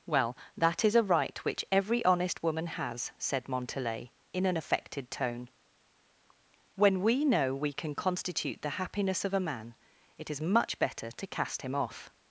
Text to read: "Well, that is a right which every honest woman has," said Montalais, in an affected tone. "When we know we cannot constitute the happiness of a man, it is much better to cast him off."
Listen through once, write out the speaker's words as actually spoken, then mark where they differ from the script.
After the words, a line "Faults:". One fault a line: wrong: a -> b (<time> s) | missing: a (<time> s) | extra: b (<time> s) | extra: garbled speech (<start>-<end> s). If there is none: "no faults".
"Well, that is a right which every honest woman has," said Montalais, in an affected tone. "When we know we can constitute the happiness of a man, it is much better to cast him off."
Faults:
wrong: cannot -> can (7.7 s)